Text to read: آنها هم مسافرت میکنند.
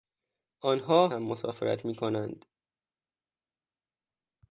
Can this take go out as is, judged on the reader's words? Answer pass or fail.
pass